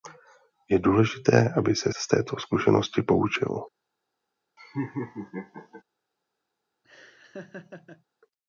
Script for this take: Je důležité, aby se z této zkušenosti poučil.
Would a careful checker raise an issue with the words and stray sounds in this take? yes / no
yes